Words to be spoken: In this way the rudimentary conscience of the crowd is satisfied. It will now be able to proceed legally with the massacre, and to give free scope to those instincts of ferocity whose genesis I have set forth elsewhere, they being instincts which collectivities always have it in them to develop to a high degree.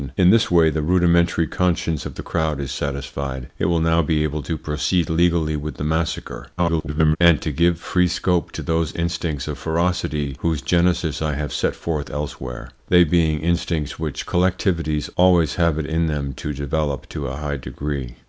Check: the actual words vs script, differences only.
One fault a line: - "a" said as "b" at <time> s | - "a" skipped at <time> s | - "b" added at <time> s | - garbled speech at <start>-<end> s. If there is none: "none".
- garbled speech at 6.6-7.2 s